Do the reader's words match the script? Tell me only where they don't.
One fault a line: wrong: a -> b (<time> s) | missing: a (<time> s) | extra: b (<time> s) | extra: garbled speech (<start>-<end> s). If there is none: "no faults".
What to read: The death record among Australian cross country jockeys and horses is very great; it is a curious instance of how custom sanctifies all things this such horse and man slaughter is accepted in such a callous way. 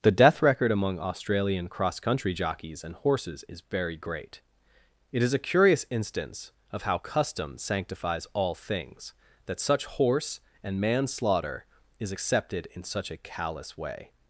wrong: this -> that (9.5 s)